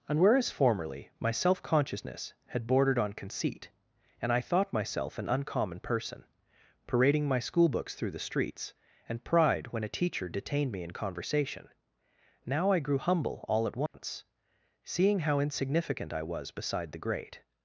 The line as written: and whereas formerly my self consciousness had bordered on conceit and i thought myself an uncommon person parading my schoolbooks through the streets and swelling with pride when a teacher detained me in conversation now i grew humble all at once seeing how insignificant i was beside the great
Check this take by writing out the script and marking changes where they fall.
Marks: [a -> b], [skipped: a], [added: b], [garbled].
and whereas formerly my self consciousness had bordered on conceit and i thought myself an uncommon person parading my schoolbooks through the streets and [skipped: swelling with] pride when a teacher detained me in conversation now i grew humble all at once seeing how insignificant i was beside the great